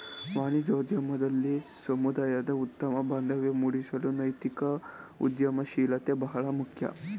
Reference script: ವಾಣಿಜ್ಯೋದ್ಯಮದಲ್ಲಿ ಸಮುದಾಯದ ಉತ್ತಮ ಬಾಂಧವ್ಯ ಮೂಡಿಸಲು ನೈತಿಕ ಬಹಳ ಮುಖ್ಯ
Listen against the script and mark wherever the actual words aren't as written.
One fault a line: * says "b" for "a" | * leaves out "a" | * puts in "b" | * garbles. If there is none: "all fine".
* puts in "ಉದ್ಯಮಶೀಲತೆ"